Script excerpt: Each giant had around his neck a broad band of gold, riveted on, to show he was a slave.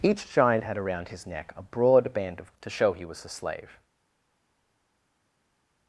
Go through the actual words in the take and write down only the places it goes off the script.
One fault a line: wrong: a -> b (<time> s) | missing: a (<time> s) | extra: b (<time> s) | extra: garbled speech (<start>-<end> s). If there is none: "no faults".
missing: gold riveted on (2.5 s)